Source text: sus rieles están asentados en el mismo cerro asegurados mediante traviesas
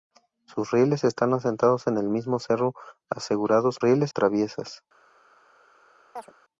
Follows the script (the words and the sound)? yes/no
no